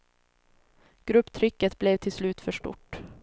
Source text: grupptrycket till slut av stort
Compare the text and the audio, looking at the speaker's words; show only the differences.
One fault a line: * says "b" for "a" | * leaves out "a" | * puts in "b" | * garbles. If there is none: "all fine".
* puts in "blev"
* says "för" for "av"